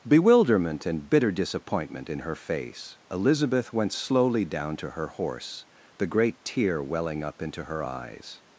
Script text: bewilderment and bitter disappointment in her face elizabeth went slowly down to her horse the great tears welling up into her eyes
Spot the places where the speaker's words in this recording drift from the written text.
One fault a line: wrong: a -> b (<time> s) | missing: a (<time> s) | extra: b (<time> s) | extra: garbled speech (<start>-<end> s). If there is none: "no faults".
wrong: tears -> tear (6.4 s)